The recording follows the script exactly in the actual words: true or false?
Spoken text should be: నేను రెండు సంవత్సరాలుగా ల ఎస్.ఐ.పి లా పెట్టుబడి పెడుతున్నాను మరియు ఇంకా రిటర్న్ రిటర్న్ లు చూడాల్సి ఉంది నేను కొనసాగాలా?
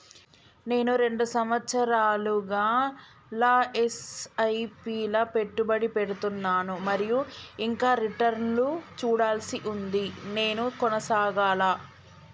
false